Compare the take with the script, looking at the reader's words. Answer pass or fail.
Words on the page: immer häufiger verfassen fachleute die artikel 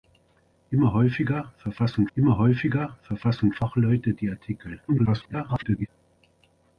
fail